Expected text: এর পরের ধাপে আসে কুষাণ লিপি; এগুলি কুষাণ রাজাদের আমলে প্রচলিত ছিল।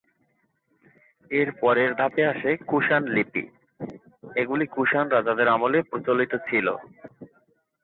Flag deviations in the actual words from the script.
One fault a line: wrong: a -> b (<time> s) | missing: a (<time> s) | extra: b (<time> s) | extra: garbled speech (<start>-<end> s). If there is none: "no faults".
no faults